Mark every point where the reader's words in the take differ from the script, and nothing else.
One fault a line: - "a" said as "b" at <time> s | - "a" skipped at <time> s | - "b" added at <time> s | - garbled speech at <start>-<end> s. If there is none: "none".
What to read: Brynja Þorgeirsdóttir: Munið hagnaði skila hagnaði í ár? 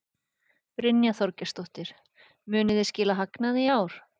- "hagnaði" said as "þið" at 2.8 s